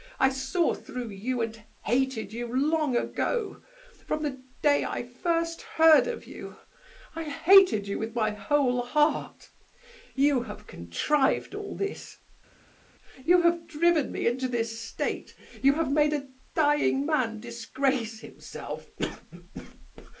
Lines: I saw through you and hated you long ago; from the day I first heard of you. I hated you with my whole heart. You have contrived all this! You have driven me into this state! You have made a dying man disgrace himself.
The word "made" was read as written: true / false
true